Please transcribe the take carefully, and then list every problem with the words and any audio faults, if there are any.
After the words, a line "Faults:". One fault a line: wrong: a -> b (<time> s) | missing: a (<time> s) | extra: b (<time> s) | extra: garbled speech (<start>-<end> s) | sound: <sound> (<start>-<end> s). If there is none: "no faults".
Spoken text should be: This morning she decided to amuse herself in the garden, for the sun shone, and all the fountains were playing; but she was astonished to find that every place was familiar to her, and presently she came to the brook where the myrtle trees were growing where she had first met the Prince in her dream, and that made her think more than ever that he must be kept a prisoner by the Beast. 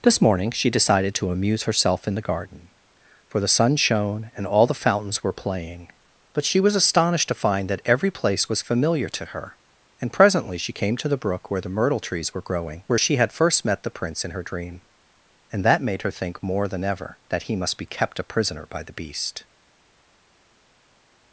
This morning she decided to amuse herself in the garden, for the sun shone, and all the fountains were playing; but she was astonished to find that every place was familiar to her, and presently she came to the brook where the myrtle trees were growing where she had first met the Prince in her dream, and that made her think more than ever that he must be kept a prisoner by the Beast.
Faults:
no faults